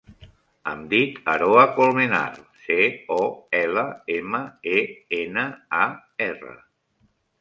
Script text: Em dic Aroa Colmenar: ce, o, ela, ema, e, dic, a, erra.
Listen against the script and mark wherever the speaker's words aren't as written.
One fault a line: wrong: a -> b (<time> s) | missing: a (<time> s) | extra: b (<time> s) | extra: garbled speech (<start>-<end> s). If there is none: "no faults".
wrong: dic -> ena (5.2 s)